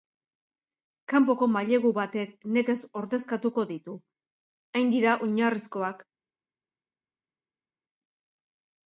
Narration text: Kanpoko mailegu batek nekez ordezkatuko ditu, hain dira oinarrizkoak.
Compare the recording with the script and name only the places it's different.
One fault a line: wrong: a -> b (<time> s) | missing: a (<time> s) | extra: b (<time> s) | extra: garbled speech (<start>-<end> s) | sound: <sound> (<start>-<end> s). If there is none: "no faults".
no faults